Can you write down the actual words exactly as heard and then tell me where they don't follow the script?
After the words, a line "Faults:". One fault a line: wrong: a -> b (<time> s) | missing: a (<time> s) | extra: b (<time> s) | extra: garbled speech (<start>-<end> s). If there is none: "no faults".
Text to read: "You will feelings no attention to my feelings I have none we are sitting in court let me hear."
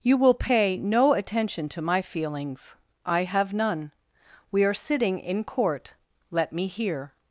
"You will pay no attention to my feelings I have none we are sitting in court let me hear."
Faults:
wrong: feelings -> pay (0.3 s)